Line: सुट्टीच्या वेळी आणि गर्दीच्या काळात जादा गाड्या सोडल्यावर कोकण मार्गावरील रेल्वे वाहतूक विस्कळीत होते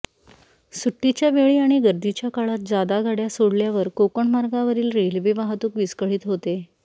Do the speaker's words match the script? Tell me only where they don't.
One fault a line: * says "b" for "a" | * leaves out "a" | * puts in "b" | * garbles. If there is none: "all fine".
all fine